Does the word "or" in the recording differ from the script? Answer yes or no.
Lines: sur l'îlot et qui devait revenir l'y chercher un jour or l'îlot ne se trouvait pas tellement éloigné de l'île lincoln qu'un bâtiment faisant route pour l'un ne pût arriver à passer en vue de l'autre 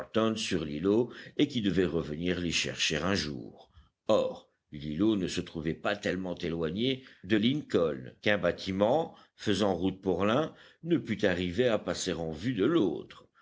no